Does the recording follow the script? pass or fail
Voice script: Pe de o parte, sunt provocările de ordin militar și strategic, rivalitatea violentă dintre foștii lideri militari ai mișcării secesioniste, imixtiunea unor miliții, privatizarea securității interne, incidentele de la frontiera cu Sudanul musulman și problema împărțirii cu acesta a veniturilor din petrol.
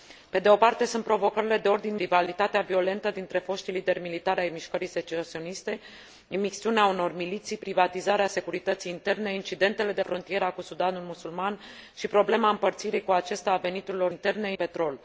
fail